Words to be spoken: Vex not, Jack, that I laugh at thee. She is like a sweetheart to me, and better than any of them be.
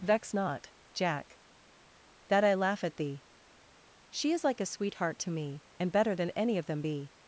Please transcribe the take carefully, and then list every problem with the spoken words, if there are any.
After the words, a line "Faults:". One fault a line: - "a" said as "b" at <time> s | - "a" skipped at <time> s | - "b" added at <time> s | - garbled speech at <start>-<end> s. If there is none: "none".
Vex not, Jack, that I laugh at thee. She is like a sweetheart to me, and better than any of them be.
Faults:
none